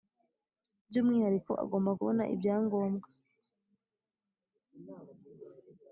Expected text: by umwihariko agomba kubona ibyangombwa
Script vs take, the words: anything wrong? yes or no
no